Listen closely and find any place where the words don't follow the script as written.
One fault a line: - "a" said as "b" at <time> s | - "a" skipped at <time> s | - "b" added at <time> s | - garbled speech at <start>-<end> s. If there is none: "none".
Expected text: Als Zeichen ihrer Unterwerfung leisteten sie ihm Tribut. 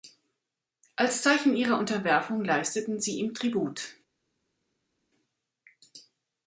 none